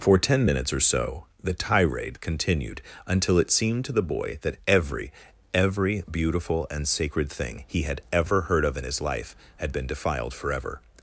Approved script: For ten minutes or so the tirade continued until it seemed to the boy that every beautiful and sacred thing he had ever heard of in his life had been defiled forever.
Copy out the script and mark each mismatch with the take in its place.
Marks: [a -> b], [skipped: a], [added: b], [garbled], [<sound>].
For ten minutes or so the tirade continued until it seemed to the boy that every [added: every] beautiful and sacred thing he had ever heard of in his life had been defiled forever.